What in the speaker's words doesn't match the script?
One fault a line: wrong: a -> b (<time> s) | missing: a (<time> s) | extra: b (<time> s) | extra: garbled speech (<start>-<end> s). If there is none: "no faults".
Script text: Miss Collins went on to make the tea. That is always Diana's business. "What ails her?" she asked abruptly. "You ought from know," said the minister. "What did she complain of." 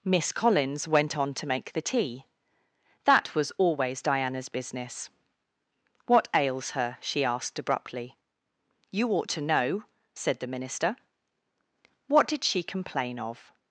wrong: is -> was (3.4 s)
wrong: from -> to (9.3 s)